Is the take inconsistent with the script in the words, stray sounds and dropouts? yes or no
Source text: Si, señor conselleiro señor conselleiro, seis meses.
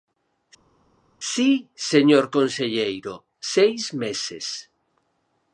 yes